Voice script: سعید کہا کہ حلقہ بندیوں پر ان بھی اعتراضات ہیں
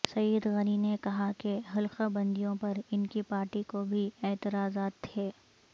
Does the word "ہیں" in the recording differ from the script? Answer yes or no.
yes